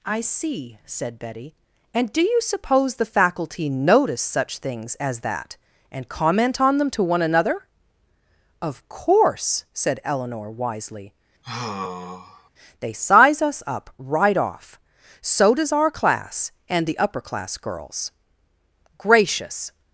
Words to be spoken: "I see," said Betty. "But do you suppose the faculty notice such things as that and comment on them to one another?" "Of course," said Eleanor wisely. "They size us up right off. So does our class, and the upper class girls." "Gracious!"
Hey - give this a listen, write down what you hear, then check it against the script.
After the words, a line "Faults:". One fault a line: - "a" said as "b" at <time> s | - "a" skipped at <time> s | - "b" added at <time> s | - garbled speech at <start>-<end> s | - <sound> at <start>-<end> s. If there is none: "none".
"I see," said Betty. "And do you suppose the faculty notice such things as that and comment on them to one another?" "Of course," said Eleanor wisely. "They size us up right off. So does our class, and the upper class girls." "Gracious!"
Faults:
- "But" said as "And" at 1.9 s
- sigh at 11.4-12.5 s